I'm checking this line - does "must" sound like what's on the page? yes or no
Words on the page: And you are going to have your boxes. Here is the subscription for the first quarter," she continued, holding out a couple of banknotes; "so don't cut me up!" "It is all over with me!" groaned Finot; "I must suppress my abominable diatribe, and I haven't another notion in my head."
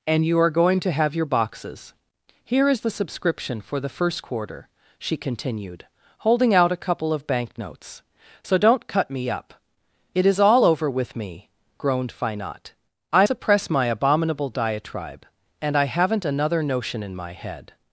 no